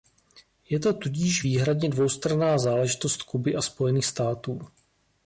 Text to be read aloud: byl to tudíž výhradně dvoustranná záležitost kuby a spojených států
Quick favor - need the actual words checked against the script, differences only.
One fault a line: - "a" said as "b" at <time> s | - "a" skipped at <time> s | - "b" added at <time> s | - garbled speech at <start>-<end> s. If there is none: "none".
- "byl" said as "je" at 0.7 s